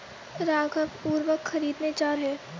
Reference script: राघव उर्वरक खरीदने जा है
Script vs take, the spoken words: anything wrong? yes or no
no